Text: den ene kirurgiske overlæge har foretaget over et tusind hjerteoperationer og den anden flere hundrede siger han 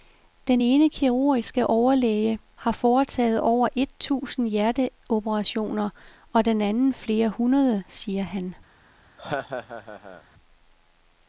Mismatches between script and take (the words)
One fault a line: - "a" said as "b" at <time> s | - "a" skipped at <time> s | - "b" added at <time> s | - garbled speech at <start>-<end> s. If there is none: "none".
none